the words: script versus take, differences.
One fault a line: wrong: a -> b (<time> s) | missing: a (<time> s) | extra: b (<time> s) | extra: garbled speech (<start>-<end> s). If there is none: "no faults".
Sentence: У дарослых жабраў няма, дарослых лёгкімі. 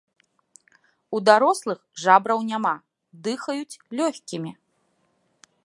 wrong: дарослых -> дыхаюць (3.3 s)